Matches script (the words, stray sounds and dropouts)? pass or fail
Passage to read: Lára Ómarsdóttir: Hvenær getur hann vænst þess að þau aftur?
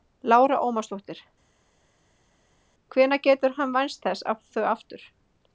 pass